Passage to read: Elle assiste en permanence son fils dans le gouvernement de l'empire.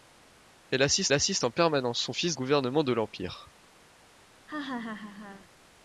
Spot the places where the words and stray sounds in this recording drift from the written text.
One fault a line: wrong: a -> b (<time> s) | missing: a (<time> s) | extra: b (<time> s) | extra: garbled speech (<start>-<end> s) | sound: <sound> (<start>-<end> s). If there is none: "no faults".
extra: assiste (1.1 s)
missing: dans le (2.3 s)
sound: laugh (4.5-5.5 s)